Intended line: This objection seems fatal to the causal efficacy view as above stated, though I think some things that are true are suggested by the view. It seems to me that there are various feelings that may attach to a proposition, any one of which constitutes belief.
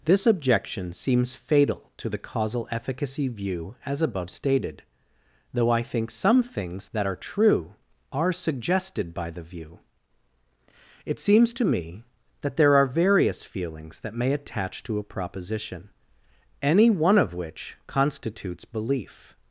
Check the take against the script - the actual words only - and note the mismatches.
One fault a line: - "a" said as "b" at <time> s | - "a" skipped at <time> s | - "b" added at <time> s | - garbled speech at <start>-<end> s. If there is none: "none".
none